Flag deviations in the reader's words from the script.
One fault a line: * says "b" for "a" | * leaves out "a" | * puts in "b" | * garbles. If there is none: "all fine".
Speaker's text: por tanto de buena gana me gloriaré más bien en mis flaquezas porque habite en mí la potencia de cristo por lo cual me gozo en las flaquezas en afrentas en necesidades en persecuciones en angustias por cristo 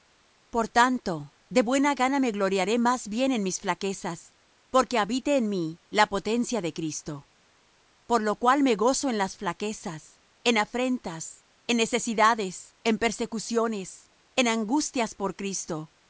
all fine